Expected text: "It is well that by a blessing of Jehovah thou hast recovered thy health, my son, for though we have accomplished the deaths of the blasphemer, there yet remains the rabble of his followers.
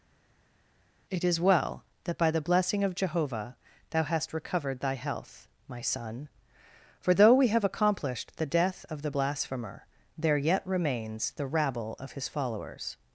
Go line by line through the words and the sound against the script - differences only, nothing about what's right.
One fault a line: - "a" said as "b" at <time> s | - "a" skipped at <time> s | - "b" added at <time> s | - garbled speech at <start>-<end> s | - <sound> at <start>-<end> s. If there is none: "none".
- "a" said as "the" at 2.3 s
- "deaths" said as "death" at 8.5 s